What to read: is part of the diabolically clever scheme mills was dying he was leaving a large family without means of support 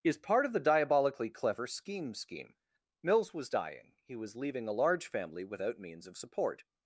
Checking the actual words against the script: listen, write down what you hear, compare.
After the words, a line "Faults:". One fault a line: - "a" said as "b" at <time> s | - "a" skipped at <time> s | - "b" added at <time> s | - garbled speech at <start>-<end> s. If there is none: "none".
is part of the diabolically clever scheme scheme mills was dying he was leaving a large family without means of support
Faults:
- "scheme" added at 2.1 s